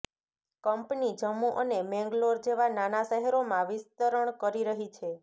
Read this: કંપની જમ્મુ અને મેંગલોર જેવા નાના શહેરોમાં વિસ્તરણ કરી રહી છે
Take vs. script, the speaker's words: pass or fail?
pass